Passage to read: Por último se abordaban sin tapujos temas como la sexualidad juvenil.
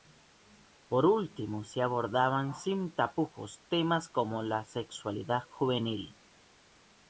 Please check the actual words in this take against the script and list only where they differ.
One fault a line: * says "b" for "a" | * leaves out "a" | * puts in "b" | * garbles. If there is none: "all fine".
all fine